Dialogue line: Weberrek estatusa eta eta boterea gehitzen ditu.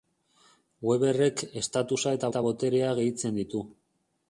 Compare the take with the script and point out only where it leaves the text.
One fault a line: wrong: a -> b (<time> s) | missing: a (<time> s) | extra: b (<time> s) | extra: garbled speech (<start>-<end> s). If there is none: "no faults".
no faults